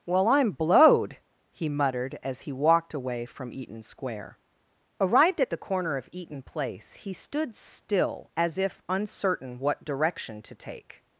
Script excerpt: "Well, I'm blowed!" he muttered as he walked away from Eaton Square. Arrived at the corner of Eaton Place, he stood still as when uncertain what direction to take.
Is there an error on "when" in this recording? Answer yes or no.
yes